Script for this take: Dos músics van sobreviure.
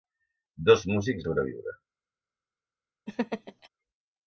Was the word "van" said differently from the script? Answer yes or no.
yes